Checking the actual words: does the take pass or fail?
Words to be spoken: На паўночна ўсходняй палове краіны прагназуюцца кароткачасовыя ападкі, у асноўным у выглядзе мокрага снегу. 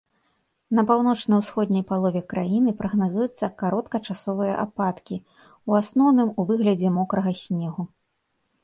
pass